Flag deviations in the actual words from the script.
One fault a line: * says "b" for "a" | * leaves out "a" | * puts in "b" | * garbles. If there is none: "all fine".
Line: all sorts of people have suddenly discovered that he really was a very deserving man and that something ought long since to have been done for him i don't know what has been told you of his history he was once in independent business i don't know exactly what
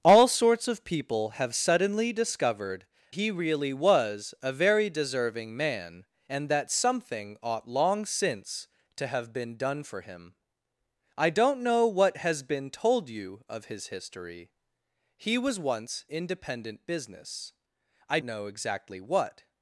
* leaves out "that"
* leaves out "in"
* leaves out "don't"